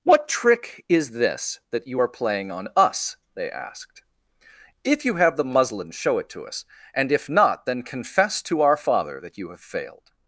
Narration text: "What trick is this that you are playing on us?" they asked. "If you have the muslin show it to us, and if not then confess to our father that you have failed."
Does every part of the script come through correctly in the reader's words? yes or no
yes